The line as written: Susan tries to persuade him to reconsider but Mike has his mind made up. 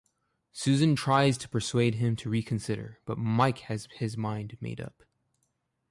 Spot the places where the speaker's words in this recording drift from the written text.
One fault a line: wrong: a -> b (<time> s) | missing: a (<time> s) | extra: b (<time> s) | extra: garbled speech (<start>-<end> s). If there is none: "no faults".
no faults